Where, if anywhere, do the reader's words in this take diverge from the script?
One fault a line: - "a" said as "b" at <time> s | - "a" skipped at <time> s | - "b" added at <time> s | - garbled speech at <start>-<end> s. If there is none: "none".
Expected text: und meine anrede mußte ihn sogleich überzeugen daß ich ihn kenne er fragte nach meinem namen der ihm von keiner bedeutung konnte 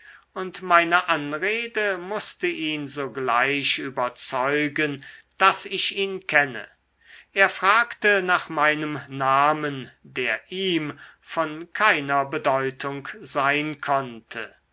- "sein" added at 13.2 s